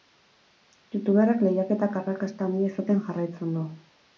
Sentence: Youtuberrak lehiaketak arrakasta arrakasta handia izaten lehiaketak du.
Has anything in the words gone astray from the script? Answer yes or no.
yes